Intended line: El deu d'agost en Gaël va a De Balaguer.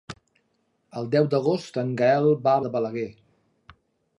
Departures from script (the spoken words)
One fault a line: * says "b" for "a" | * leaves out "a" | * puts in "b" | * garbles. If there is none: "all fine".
all fine